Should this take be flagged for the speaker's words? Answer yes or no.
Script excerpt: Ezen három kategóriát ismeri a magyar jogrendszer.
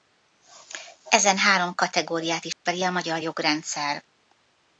no